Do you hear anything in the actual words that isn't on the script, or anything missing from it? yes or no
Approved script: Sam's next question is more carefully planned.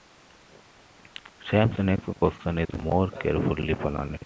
no